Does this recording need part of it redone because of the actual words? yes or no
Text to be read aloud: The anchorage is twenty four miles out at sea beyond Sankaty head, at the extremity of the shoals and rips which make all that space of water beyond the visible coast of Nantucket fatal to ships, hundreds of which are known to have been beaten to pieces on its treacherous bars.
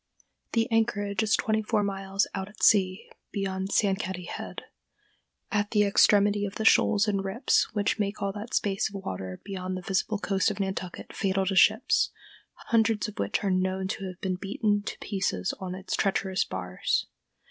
no